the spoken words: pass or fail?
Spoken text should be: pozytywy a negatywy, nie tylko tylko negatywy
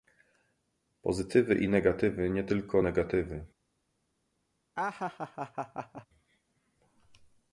fail